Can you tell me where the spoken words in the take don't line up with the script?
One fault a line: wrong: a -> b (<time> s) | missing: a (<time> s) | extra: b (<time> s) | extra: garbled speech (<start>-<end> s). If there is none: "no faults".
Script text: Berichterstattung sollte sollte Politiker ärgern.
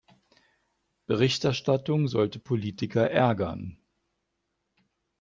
missing: sollte (2.4 s)